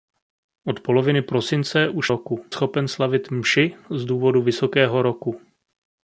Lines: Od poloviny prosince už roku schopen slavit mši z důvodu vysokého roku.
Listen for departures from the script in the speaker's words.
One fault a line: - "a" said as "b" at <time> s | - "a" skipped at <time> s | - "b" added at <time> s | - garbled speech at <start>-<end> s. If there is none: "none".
none